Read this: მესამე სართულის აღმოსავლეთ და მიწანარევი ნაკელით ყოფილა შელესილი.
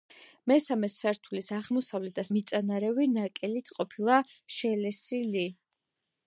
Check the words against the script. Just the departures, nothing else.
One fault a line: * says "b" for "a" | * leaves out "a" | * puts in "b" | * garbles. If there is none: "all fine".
all fine